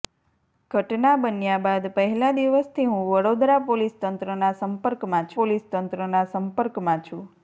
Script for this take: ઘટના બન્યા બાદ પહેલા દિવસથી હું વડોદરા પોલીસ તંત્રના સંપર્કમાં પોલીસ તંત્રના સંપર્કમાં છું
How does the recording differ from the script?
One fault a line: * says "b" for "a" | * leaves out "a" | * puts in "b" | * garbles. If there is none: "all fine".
all fine